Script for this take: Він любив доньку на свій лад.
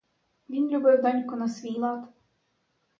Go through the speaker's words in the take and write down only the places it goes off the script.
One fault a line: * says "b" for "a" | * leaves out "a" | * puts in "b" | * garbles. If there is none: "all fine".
all fine